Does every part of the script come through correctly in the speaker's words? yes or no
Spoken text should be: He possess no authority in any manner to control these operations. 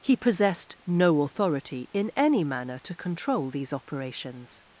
no